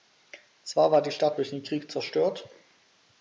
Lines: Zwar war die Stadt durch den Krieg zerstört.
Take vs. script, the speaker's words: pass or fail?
pass